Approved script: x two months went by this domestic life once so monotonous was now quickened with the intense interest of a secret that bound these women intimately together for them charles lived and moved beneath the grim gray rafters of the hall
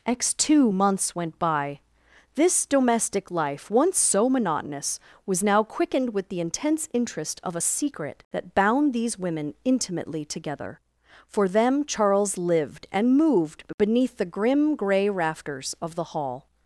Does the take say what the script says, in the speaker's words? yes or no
yes